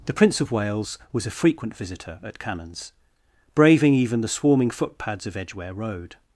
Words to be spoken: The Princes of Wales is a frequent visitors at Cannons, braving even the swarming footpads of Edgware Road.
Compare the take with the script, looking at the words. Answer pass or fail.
fail